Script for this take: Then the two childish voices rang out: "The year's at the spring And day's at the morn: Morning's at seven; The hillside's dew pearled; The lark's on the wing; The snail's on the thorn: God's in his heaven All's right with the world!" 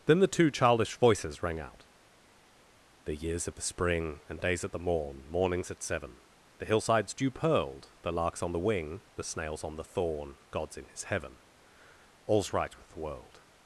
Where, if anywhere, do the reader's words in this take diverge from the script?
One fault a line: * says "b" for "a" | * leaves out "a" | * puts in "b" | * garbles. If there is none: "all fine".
* says "of" for "at"